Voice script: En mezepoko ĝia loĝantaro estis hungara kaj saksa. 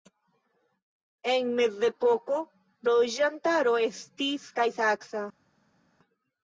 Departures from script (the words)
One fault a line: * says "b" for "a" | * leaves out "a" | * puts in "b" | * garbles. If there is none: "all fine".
* leaves out "ĝia"
* leaves out "hungara"